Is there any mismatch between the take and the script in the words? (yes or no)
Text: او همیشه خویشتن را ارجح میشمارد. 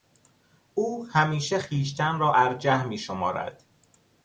no